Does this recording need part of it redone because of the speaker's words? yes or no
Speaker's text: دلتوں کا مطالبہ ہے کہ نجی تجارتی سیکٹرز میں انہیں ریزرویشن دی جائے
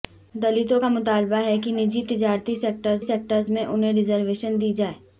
yes